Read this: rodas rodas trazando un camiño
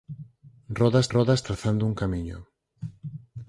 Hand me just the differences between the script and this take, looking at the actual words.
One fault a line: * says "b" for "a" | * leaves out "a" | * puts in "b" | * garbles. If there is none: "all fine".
all fine